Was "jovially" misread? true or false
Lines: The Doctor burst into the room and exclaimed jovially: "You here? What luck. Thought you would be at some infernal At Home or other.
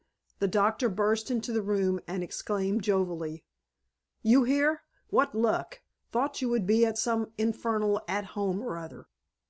false